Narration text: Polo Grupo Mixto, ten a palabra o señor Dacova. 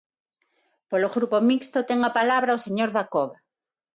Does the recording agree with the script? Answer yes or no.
yes